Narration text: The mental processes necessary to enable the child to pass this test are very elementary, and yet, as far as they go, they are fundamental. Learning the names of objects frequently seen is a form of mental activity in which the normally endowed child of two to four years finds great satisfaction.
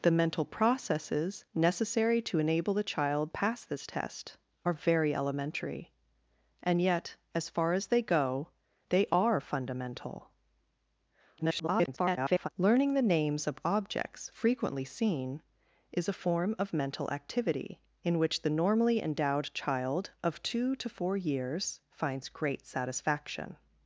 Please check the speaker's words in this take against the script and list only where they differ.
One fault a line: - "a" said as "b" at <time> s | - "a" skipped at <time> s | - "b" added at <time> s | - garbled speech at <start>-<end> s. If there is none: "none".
- "to" skipped at 3.3 s
- garbled speech at 11.4-12.5 s